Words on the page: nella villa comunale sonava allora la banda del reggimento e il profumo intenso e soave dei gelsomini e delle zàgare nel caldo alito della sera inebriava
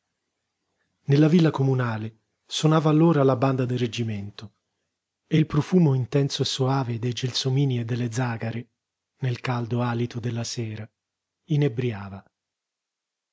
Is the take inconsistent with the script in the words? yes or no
no